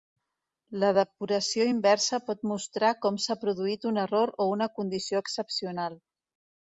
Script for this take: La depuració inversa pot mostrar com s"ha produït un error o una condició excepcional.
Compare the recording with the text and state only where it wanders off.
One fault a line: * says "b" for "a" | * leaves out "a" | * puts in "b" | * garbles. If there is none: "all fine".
all fine